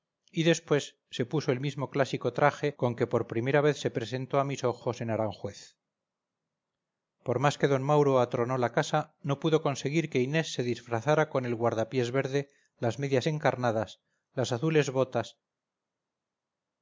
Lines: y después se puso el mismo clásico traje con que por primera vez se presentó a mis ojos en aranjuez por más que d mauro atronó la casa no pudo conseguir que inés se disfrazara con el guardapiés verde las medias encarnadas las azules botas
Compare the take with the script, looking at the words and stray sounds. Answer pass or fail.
pass